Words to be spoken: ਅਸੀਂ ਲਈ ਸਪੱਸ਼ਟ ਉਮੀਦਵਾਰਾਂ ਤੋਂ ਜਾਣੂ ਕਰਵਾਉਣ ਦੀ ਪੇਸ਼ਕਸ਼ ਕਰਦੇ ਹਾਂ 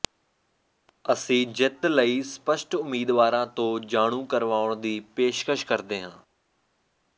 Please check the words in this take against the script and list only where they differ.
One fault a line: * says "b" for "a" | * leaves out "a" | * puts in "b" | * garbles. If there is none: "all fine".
* puts in "ਜਿੱਤ"